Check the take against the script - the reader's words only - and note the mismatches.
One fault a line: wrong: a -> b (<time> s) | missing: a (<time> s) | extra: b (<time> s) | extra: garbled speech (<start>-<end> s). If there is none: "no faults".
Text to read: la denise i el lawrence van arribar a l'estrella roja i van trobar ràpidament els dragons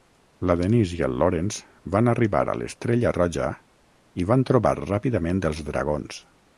no faults